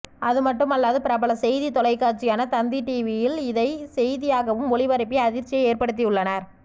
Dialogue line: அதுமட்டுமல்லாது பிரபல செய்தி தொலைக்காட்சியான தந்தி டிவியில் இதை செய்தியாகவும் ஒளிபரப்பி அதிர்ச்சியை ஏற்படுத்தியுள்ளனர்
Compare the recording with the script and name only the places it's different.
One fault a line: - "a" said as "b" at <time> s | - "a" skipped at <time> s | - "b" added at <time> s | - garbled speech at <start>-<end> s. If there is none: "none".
none